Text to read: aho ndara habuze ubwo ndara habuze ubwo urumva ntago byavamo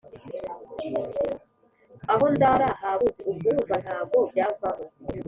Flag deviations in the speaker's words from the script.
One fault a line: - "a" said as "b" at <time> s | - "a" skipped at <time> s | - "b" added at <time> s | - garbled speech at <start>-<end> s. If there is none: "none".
- "ndara habuze ubwo" skipped at 3.5 s